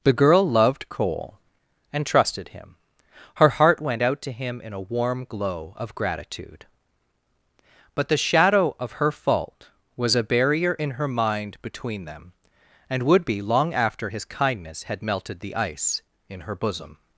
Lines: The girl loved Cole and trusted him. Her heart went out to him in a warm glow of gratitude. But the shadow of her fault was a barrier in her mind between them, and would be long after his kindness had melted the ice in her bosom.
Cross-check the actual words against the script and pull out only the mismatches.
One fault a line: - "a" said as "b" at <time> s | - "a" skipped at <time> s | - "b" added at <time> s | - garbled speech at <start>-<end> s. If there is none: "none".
none